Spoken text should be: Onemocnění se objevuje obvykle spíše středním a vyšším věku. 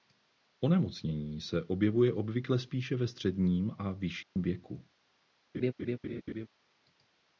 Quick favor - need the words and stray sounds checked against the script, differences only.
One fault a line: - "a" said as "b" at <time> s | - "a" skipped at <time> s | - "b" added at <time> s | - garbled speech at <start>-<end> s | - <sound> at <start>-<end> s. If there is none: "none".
- "ve" added at 3.0 s
- dropout at 4.2-4.4 s
- laugh at 5.5-6.5 s